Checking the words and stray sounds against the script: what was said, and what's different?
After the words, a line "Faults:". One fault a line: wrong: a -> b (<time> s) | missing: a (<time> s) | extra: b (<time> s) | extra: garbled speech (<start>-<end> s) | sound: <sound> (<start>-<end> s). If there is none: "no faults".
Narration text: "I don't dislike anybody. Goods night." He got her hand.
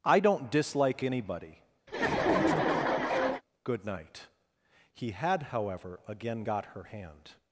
"I don't dislike anybody. Good night." He had however again got her hand.
Faults:
sound: laugh (1.9-3.4 s)
wrong: Goods -> Good (3.6 s)
extra: had however again (5.1 s)